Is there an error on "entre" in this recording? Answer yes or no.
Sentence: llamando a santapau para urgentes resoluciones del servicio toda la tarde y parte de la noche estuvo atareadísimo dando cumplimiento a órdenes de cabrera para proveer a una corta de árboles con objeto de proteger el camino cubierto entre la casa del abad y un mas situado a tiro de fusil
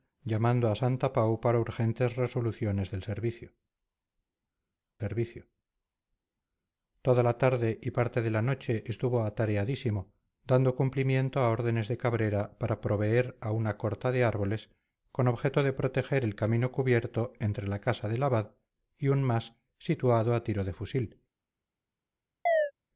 no